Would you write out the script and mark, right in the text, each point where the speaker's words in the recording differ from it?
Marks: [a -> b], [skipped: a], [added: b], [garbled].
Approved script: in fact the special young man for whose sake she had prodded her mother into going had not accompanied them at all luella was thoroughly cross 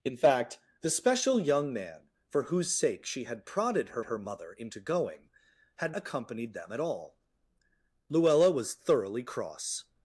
in fact the special young man for whose sake she had prodded her [added: her] mother into going had [skipped: not] accompanied them at all luella was thoroughly cross